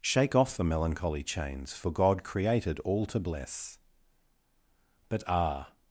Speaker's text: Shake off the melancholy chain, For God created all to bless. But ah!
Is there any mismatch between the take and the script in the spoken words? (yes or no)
yes